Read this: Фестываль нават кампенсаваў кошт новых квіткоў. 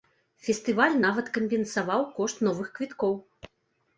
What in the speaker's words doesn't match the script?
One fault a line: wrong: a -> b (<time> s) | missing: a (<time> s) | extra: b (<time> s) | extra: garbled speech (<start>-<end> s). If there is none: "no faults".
no faults